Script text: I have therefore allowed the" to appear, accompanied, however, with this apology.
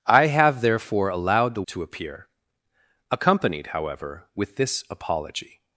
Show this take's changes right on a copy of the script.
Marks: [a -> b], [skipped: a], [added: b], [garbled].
I have therefore allowed the" to appear, accompanied, however, with this apology.